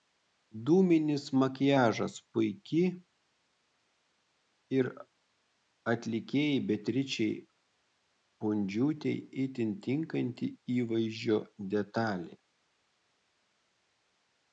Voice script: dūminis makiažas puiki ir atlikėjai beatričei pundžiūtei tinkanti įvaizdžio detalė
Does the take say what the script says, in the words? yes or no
no